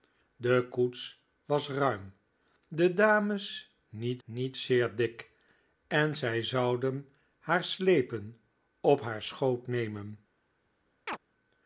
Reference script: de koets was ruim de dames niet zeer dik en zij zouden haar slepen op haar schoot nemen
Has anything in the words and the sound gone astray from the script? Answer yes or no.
yes